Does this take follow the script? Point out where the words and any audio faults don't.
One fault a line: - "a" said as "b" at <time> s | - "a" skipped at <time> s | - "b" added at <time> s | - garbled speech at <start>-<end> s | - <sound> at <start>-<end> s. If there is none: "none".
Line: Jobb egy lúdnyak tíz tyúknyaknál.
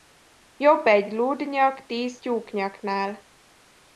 none